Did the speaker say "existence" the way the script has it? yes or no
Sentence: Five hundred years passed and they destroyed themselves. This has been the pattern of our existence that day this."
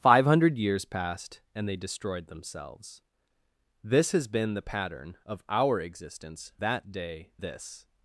yes